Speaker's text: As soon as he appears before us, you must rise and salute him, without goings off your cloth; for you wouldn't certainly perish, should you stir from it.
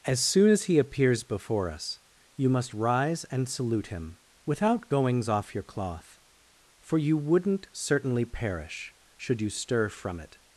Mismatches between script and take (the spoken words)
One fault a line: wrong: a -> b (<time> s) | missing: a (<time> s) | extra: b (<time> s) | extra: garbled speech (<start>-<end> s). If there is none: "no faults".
no faults